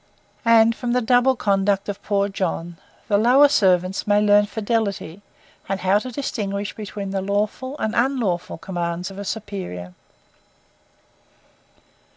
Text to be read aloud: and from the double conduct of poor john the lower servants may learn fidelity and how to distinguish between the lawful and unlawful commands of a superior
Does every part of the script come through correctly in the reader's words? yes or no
yes